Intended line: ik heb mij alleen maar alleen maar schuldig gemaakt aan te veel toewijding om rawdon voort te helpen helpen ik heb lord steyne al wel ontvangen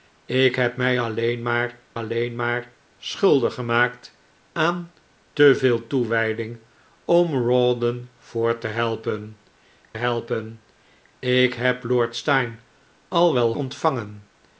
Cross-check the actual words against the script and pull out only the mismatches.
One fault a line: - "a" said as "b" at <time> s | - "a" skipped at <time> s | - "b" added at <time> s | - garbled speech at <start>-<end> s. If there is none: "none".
none